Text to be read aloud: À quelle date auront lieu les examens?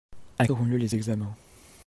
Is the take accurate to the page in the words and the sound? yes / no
no